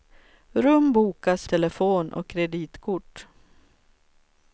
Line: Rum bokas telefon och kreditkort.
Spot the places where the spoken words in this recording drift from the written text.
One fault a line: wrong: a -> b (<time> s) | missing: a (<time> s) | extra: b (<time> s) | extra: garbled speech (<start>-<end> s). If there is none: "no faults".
no faults